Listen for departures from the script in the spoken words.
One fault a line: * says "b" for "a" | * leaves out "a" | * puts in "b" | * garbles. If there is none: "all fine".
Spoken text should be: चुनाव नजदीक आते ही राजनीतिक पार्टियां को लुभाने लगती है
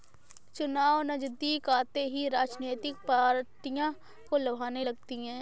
all fine